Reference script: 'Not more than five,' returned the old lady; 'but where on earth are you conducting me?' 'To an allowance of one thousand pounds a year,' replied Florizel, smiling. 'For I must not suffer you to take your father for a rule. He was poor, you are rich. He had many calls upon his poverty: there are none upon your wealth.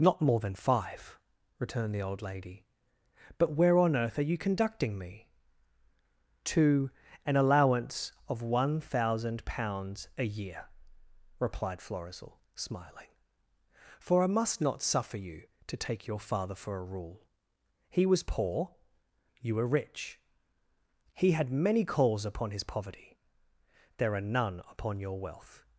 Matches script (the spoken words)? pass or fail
fail